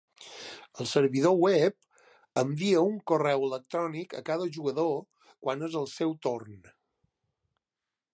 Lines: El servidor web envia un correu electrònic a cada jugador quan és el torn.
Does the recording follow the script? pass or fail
fail